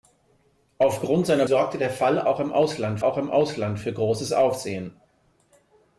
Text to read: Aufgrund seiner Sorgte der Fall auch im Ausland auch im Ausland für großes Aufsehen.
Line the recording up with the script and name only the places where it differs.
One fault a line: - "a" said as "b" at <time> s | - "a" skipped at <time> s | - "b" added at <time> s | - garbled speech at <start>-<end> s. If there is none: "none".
none